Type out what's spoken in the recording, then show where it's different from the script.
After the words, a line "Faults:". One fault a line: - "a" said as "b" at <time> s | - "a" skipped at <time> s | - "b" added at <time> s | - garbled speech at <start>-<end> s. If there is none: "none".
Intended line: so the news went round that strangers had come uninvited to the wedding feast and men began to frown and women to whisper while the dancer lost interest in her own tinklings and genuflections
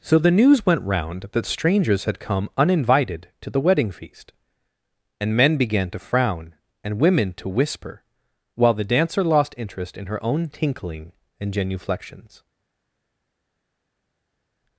so the news went round that strangers had come uninvited to the wedding feast and men began to frown and women to whisper while the dancer lost interest in her own tinkling and genuflections
Faults:
- "tinklings" said as "tinkling" at 10.5 s